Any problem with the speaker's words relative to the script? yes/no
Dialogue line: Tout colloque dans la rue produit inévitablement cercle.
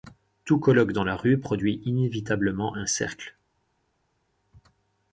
yes